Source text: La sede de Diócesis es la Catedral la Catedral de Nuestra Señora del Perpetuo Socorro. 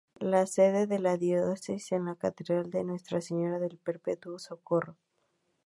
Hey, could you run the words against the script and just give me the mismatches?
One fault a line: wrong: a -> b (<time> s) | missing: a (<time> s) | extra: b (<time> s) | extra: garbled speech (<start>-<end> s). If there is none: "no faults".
extra: la (1.0 s)
missing: la Catedral (2.7 s)